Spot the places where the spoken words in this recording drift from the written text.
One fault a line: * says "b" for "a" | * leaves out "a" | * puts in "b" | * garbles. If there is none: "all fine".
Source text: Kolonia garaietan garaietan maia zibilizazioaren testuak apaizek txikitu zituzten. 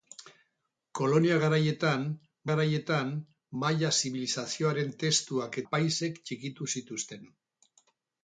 all fine